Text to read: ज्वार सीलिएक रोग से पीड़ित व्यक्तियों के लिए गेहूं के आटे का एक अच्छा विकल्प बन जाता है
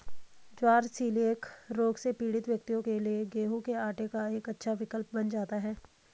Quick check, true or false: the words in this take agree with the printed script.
true